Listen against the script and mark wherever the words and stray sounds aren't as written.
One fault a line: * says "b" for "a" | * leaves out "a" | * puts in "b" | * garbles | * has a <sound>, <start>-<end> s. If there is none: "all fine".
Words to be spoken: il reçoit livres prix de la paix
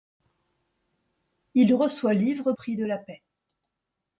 all fine